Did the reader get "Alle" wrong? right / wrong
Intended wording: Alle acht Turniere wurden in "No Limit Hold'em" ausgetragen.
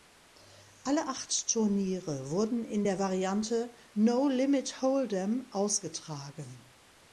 right